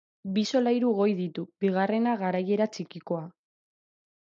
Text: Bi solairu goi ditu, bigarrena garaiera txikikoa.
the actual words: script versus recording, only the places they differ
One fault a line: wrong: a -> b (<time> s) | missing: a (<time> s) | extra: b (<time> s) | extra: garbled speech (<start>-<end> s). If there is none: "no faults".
no faults